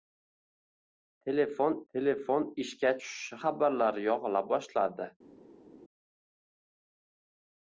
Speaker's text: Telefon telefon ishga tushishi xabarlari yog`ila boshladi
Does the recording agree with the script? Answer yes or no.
yes